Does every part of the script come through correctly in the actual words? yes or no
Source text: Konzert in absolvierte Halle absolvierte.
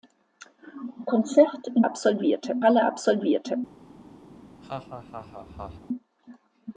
yes